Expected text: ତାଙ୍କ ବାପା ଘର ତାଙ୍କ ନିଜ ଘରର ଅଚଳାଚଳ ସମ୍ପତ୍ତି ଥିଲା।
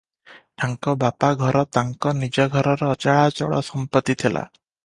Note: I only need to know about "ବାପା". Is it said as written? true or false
true